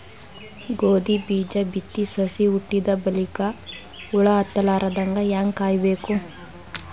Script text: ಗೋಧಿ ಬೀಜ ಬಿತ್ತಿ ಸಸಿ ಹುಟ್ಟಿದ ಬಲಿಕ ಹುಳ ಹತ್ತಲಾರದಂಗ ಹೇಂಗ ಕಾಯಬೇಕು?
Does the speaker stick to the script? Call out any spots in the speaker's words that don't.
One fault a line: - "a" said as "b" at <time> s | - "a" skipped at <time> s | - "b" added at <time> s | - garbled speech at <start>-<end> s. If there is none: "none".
none